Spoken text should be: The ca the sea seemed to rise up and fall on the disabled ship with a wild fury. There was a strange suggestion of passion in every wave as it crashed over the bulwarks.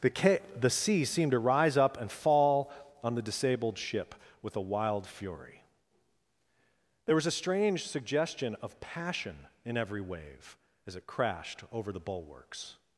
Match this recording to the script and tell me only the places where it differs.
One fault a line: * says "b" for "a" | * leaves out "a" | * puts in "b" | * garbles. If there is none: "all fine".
all fine